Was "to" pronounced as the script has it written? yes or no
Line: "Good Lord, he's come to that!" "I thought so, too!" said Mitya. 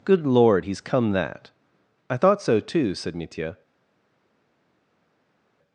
no